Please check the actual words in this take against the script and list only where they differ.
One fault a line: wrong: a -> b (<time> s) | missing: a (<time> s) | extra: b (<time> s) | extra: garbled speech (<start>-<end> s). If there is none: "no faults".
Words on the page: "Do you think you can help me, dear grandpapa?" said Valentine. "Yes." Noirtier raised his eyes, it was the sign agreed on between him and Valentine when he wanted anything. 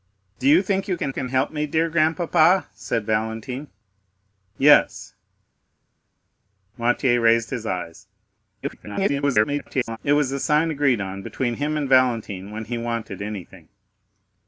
extra: can (1.1 s)
extra: garbled speech (8.6-10.0 s)